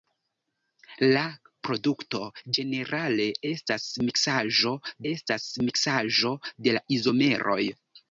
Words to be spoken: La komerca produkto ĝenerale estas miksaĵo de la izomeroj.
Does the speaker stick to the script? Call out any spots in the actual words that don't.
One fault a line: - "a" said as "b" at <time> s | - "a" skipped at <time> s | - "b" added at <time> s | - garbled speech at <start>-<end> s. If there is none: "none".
- "komerca" skipped at 1.2 s
- "estas miksaĵo" added at 5.1 s